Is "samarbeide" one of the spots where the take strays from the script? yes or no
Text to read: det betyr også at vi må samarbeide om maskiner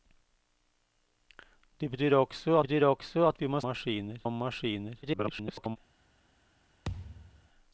yes